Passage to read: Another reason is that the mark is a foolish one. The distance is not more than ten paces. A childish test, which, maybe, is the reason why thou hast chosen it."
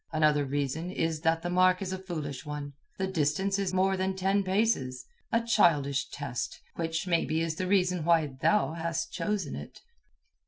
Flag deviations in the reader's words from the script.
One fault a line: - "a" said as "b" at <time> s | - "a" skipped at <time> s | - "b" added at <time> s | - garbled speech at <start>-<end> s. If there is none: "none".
- "not" skipped at 3.7 s